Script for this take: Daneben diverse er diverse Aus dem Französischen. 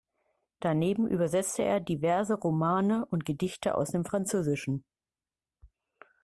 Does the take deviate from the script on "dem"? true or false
false